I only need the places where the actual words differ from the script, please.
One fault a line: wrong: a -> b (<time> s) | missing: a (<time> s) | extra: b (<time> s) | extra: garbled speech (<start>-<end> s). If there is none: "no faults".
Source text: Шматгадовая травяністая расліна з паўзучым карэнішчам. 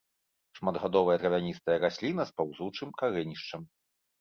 no faults